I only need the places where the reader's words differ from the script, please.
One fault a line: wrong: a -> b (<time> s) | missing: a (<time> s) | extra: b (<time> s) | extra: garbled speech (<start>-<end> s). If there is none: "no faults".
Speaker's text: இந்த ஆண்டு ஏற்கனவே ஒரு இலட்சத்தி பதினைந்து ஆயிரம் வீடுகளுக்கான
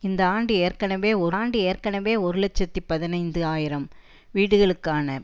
extra: ஆண்டு ஏற்கனவே ஒரு (1.3 s)